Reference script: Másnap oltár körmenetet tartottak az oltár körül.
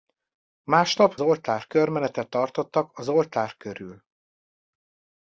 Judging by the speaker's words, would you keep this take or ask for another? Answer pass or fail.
pass